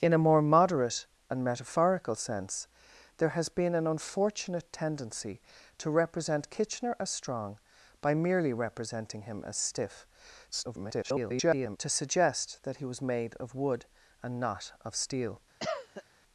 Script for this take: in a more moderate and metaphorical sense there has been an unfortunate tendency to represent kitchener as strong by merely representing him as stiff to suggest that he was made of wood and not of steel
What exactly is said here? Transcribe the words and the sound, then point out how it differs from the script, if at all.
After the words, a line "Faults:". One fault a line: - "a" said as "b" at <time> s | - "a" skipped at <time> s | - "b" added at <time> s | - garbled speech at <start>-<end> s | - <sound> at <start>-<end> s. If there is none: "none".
in a more moderate and metaphorical sense there has been an unfortunate tendency to represent kitchener as strong by merely representing him as stiff [garbled] to suggest that he was made of wood and not of steel
Faults:
- garbled speech at 10.5-11.8 s
- cough at 15.6-16.0 s